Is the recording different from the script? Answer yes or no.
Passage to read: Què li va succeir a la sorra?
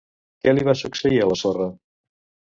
no